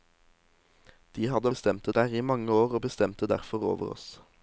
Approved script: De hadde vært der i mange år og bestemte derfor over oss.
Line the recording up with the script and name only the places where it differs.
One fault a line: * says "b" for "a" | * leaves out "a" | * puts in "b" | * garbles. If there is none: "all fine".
* says "bestemte" for "vært"